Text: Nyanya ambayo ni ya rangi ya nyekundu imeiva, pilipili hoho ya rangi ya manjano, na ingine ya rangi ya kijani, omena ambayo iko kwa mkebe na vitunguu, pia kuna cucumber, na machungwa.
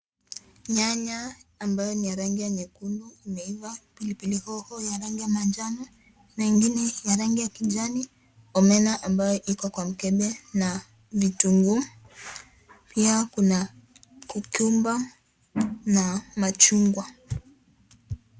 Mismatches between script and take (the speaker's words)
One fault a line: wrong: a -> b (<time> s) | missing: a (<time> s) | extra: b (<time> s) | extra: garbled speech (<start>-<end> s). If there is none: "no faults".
no faults